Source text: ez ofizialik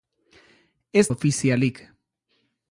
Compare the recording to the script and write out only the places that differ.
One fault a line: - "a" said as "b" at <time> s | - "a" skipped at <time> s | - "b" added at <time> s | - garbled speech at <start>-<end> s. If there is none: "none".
none